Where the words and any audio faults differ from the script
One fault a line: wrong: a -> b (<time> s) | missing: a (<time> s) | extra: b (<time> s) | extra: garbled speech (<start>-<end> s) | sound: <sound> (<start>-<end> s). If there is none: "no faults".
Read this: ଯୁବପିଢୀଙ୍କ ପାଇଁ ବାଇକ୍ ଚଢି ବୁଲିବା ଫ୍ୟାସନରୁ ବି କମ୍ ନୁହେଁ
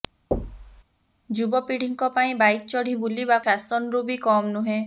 sound: thud (0.3-0.8 s)